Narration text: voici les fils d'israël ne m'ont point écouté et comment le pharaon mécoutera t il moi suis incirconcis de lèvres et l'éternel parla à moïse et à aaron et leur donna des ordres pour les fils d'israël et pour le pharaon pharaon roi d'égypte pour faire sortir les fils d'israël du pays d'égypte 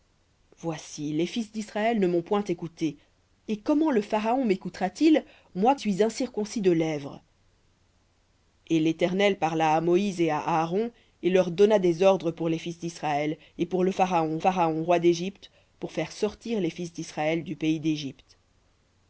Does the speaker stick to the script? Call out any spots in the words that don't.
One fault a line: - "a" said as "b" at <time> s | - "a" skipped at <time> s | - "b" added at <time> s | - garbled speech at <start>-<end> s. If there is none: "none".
none